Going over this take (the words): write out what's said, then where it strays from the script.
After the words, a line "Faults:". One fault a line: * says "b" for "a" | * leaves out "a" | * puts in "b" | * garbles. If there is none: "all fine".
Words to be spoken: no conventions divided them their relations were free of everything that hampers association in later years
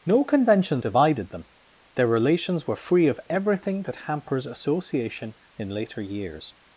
no conventions divided them their relations were free of everything that hampers association in later years
Faults:
all fine